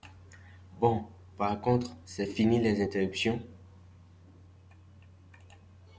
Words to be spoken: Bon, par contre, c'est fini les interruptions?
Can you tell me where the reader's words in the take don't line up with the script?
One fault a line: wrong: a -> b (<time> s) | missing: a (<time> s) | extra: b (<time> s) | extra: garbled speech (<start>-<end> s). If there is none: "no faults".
no faults